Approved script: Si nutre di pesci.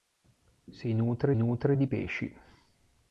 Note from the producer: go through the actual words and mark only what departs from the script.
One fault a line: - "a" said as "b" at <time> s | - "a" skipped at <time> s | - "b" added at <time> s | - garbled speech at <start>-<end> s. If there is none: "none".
- "nutre" added at 1.4 s